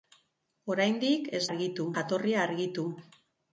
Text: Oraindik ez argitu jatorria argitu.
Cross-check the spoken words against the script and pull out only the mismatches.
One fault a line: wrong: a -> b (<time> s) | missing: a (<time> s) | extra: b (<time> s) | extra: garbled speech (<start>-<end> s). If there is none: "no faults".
no faults